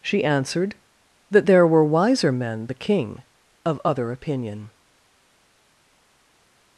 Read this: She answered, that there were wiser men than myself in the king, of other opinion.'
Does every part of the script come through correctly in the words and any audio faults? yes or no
no